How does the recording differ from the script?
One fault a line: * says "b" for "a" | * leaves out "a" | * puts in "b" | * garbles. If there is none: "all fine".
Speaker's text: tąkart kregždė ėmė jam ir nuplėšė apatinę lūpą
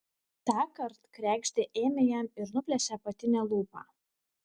all fine